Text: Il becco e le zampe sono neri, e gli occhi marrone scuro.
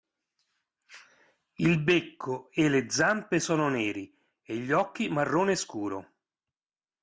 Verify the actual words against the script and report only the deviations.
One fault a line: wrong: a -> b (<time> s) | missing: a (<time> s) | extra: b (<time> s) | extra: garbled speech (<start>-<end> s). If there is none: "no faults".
no faults